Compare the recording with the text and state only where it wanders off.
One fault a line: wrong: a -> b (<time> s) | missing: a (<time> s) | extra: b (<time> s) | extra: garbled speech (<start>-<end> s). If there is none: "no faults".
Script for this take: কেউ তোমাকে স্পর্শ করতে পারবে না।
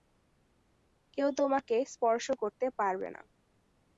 no faults